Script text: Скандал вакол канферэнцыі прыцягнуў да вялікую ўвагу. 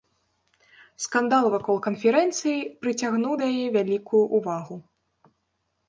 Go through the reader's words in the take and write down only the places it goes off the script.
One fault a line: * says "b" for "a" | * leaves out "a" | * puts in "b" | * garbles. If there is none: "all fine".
* puts in "яе"